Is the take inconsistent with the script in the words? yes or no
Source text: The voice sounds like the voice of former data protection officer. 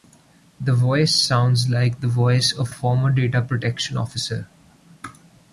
no